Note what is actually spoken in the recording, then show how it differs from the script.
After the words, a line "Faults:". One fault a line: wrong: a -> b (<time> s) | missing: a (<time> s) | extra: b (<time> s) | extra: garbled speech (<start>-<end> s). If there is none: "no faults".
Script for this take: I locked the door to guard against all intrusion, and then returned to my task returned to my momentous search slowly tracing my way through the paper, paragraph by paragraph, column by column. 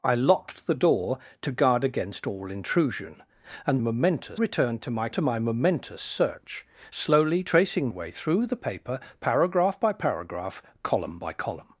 I locked the door to guard against all intrusion, and momentous returned to my to my momentous search slowly tracing way through the paper, paragraph by paragraph, column by column.
Faults:
wrong: then -> momentous (3.8 s)
missing: task returned (5.1 s)
missing: my (7.9 s)